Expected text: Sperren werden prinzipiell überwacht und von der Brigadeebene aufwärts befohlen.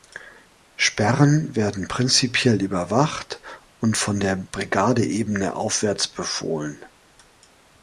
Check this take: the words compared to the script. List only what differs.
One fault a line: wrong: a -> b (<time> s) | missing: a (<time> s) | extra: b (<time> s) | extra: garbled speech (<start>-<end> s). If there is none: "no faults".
no faults